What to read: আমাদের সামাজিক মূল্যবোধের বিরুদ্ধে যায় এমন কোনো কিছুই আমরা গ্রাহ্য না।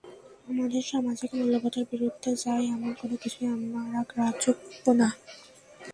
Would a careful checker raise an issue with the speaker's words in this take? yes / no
yes